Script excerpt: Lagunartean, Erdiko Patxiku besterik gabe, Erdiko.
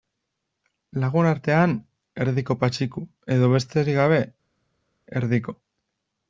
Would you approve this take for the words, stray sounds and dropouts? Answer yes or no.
no